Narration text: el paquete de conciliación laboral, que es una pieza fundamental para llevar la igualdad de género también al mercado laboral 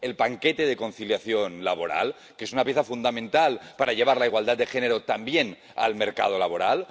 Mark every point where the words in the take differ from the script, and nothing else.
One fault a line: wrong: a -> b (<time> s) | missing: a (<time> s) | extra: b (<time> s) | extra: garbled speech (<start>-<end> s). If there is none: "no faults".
no faults